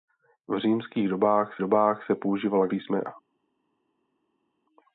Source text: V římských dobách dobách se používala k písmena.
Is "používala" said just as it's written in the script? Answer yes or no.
yes